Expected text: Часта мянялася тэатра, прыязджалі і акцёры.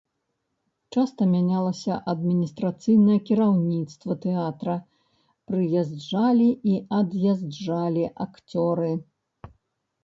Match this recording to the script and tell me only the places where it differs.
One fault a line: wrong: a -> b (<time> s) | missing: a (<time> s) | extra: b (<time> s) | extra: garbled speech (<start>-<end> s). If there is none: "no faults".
extra: адміністрацыйнае кіраўніцтва (2.1 s)
extra: ад'язджалі (7.0 s)